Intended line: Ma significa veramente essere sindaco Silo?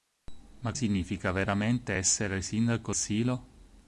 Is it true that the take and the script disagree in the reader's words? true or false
false